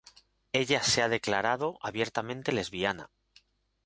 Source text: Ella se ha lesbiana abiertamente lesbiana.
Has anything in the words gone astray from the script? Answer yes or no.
yes